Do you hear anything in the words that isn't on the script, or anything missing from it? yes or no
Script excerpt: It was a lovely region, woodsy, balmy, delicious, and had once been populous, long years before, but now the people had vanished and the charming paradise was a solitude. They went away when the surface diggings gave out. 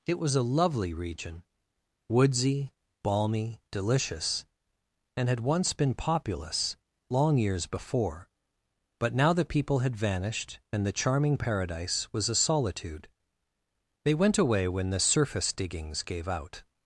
no